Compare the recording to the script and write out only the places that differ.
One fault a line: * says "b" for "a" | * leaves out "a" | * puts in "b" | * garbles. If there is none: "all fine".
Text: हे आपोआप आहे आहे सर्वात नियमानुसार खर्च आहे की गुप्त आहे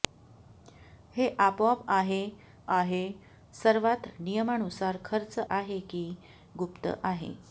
all fine